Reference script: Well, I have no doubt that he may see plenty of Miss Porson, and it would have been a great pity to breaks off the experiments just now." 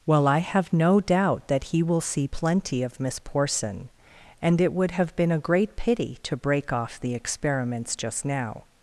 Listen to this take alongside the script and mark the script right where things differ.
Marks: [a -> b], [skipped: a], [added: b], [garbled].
Well, I have no doubt that he [may -> will] see plenty of Miss Porson, and it would have been a great pity to [breaks -> break] off the experiments just now."